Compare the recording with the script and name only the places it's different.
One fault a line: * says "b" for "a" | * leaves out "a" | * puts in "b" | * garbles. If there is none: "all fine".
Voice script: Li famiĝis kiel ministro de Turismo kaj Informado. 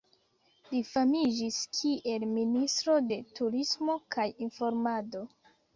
all fine